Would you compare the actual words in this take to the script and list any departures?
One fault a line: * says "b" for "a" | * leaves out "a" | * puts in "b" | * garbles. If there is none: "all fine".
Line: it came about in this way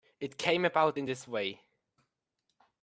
all fine